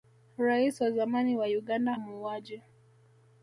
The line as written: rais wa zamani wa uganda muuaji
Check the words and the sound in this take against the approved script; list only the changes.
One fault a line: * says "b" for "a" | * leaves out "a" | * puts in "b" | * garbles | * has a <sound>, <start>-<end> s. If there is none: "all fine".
all fine